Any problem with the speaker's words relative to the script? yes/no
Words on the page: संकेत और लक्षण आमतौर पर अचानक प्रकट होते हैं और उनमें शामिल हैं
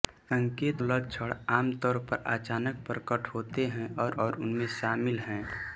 yes